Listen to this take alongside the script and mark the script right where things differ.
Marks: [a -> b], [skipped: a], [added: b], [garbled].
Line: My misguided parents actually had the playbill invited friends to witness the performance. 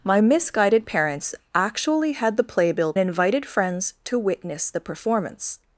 My misguided parents actually had the playbill invited friends to witness the performance.